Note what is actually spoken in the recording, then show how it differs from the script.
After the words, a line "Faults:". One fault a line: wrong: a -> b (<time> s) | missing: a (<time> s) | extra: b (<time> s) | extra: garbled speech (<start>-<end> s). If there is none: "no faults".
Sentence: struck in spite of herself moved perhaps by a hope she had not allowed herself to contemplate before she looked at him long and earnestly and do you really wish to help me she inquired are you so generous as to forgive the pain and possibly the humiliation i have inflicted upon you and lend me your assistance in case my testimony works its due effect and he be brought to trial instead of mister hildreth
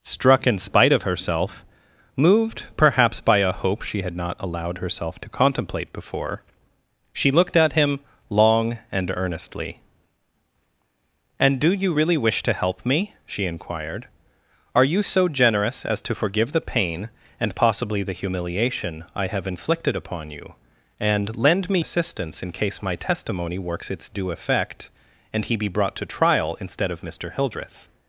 struck in spite of herself moved perhaps by a hope she had not allowed herself to contemplate before she looked at him long and earnestly and do you really wish to help me she inquired are you so generous as to forgive the pain and possibly the humiliation i have inflicted upon you and lend me assistance in case my testimony works its due effect and he be brought to trial instead of mister hildreth
Faults:
missing: your (21.8 s)